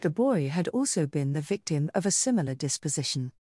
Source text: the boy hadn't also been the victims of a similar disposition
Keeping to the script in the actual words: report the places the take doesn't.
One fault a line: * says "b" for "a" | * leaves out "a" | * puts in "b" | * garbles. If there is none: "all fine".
* says "had" for "hadn't"
* says "victim" for "victims"